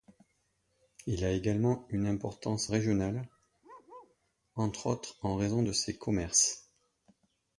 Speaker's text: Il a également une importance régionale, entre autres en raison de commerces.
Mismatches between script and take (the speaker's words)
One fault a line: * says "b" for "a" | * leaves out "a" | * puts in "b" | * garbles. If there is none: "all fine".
* puts in "ses"